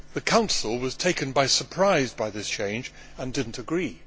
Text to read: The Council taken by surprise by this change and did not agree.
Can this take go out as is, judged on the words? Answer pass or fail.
fail